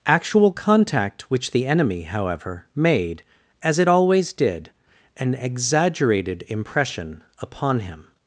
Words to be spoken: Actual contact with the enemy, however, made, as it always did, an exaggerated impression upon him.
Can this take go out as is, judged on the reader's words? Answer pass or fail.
fail